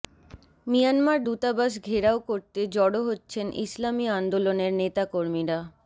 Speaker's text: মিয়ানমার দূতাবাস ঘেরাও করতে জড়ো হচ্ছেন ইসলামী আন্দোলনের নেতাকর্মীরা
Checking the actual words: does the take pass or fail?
pass